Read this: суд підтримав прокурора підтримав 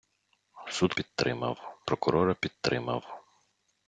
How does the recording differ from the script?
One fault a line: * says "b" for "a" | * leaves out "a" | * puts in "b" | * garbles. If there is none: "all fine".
all fine